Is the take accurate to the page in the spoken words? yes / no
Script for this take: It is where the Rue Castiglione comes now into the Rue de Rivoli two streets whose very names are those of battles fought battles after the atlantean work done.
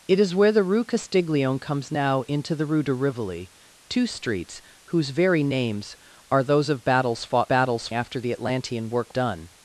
yes